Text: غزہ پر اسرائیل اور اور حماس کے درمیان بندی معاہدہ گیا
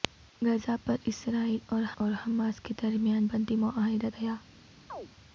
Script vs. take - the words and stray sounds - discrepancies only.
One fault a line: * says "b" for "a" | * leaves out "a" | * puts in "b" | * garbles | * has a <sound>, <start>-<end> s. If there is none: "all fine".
* has a chirp, 4.9-5.1 s